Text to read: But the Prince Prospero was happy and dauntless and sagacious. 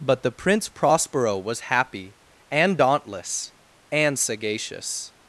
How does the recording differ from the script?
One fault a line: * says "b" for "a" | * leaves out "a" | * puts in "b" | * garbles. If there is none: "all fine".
all fine